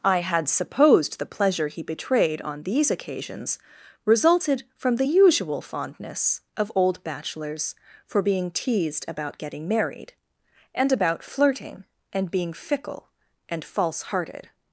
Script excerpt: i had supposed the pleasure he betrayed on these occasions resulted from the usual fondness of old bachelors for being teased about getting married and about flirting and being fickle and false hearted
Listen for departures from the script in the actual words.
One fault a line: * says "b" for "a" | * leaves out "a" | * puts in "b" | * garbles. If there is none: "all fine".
all fine